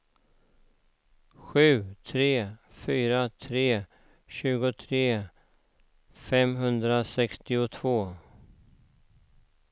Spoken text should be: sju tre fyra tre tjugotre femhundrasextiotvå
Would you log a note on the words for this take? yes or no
no